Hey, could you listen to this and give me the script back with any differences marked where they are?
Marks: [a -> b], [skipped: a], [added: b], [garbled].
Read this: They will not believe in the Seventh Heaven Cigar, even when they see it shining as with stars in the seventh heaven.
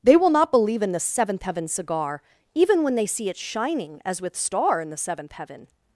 They will not believe in the Seventh Heaven Cigar, even when they see it shining as with [stars -> star] in the seventh heaven.